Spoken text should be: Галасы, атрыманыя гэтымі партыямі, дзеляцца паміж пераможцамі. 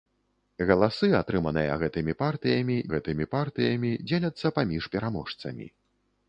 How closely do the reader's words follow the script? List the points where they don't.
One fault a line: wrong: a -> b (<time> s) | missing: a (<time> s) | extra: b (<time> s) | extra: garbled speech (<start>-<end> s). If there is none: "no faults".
extra: гэтымі партыямі (3.0 s)